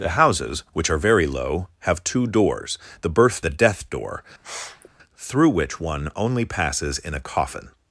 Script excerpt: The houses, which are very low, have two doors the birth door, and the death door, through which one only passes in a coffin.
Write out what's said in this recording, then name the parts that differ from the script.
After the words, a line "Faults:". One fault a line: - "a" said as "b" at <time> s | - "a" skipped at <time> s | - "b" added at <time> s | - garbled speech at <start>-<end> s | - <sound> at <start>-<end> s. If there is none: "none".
The houses, which are very low, have two doors the birth the death door, through which one only passes in a coffin.
Faults:
- "door and" skipped at 3.5 s
- sniff at 4.4-4.9 s